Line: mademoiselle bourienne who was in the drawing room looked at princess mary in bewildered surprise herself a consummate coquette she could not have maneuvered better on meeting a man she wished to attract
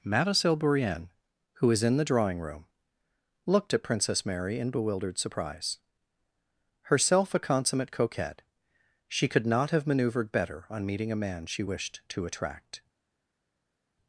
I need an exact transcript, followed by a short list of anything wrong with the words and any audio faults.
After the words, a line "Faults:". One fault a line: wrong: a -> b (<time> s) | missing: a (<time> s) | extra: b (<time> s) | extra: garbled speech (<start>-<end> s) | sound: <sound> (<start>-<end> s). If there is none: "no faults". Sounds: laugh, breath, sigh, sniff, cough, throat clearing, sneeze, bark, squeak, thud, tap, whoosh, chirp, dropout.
mademoiselle bourienne who was in the drawing room looked at princess mary in bewildered surprise herself a consummate coquette she could not have maneuvered better on meeting a man she wished to attract
Faults:
no faults